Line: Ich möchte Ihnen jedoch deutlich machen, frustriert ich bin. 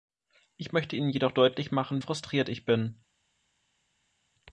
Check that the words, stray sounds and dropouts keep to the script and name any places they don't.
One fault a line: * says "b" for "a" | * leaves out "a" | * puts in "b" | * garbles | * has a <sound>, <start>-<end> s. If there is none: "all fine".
all fine